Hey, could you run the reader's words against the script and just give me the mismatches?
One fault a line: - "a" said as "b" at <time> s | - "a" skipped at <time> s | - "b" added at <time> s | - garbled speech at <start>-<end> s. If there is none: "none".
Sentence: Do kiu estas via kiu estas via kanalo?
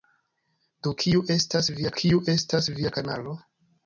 none